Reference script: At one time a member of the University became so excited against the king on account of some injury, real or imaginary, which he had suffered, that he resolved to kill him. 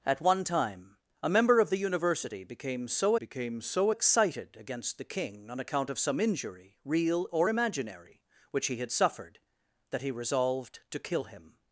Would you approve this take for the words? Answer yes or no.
no